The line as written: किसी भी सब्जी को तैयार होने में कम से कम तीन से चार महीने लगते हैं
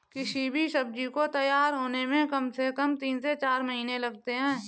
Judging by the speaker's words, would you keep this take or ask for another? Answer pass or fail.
pass